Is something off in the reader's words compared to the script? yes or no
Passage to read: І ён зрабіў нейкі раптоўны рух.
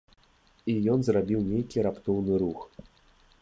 no